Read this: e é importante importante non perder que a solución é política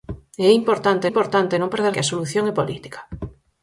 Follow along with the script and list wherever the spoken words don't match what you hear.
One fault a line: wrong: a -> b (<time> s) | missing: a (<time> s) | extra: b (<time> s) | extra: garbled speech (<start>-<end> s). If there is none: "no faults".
no faults